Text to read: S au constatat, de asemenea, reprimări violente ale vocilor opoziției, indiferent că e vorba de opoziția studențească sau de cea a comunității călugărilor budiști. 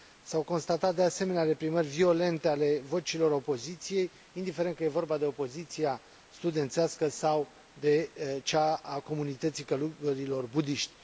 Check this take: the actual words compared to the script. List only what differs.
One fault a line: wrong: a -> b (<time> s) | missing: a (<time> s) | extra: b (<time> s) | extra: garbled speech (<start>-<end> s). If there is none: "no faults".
no faults